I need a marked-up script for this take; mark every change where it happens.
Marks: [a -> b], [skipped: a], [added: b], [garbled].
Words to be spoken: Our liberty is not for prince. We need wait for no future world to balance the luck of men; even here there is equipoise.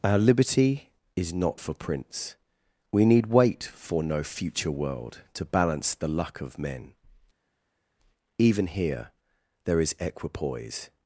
Our liberty is not for prince. We need wait for no future world to balance the luck of men; even here there is equipoise.